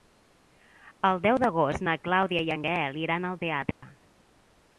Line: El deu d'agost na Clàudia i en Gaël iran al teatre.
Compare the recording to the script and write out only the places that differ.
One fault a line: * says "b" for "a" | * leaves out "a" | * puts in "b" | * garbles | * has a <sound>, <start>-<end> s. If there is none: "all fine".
* has a dropout, 3.7-3.8 s